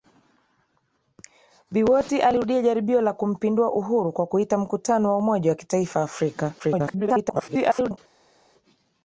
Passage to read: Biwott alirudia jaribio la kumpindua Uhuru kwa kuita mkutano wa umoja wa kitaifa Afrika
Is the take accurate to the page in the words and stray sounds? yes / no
no